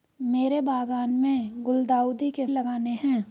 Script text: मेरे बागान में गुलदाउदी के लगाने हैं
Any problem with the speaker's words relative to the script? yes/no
no